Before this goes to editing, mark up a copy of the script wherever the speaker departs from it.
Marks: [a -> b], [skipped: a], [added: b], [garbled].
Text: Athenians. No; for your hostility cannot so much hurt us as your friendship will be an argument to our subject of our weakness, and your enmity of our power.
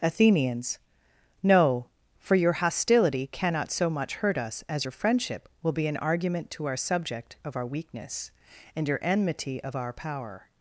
Athenians. No; for your hostility cannot so much hurt us as your friendship will be an argument to our subject of our weakness, and your enmity of our power.